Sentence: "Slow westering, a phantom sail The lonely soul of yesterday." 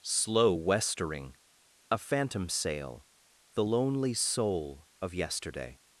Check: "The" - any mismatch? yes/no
no